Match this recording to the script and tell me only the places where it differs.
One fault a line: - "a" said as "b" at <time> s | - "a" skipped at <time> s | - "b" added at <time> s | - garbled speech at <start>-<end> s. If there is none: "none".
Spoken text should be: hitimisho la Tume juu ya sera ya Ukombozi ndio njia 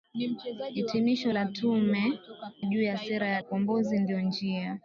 none